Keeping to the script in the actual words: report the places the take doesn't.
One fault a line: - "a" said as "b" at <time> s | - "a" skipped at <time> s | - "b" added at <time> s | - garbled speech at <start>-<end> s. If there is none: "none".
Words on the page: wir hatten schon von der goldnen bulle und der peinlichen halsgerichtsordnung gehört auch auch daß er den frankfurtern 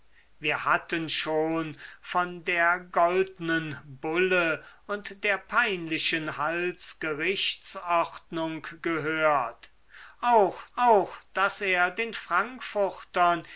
none